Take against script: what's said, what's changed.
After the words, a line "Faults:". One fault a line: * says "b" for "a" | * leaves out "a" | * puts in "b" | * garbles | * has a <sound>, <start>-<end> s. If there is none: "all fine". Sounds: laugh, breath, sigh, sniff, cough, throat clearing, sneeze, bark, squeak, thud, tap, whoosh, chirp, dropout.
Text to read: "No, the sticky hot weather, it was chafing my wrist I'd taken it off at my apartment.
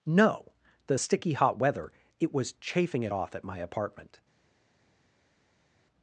"No, the sticky hot weather, it was chafing it off at my apartment.
Faults:
* leaves out "my wrist I'd taken"